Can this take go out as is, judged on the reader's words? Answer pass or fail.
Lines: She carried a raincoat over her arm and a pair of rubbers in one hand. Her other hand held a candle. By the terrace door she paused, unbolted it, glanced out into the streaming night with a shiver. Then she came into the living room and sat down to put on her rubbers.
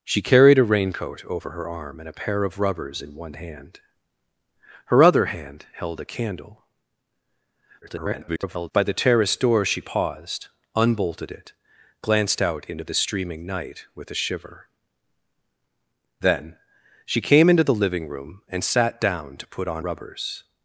fail